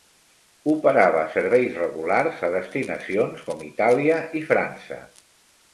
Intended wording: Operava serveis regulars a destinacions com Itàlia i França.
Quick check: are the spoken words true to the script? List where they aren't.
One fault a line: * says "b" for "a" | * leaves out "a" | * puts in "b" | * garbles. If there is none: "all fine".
all fine